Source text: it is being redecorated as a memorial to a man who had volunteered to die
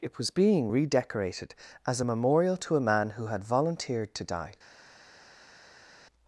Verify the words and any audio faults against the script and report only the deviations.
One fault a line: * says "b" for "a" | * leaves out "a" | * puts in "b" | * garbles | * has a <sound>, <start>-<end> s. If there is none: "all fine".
* says "was" for "is"